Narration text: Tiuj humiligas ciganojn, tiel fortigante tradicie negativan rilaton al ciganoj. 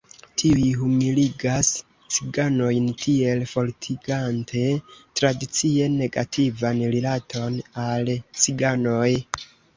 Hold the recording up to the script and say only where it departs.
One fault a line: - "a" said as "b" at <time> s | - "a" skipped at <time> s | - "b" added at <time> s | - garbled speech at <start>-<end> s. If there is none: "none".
none